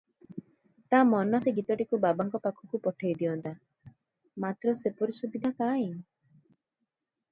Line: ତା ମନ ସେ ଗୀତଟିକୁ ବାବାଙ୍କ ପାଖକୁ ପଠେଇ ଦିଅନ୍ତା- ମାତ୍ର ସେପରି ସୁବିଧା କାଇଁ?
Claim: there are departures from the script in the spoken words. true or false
false